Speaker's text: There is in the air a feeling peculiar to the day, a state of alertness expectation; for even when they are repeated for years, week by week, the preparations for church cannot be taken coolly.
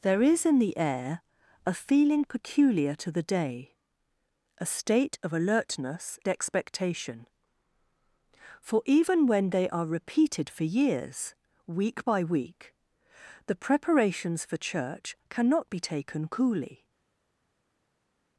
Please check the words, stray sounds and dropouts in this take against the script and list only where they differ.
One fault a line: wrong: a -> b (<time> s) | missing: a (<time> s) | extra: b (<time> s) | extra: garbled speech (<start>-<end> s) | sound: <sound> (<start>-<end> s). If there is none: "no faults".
no faults